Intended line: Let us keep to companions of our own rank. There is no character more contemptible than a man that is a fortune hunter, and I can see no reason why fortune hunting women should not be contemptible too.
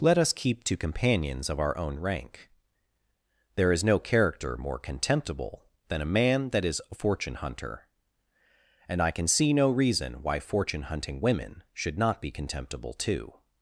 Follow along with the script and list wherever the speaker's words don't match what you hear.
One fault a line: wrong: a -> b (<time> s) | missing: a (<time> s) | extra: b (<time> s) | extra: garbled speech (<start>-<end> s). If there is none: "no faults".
no faults